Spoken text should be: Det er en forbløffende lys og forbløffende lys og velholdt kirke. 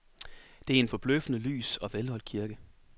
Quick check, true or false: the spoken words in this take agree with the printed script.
false